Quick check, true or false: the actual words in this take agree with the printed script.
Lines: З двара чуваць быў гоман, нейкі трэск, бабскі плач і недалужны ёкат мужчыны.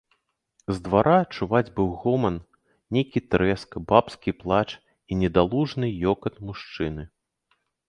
true